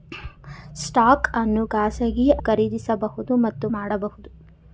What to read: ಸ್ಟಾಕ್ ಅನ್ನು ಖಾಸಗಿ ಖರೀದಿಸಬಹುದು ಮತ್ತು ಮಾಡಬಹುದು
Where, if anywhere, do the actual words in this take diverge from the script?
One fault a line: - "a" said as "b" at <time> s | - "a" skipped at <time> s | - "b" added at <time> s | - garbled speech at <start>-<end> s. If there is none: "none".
none